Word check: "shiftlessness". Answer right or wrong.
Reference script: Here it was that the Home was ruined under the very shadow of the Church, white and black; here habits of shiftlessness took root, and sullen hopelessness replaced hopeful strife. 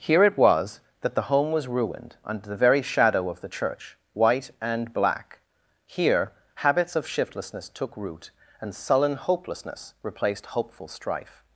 right